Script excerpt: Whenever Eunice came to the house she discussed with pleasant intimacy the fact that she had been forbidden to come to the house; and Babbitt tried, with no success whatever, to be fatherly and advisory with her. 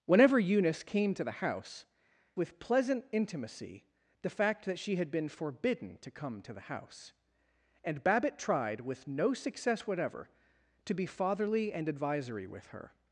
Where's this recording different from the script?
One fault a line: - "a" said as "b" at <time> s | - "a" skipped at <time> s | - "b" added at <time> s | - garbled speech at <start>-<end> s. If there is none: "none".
- "she discussed" skipped at 1.9 s